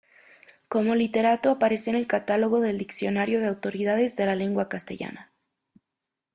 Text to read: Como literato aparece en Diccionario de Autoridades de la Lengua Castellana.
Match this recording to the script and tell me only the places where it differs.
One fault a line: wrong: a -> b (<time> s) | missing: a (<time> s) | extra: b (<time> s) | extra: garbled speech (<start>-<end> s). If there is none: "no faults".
extra: el Catálogo del (1.9 s)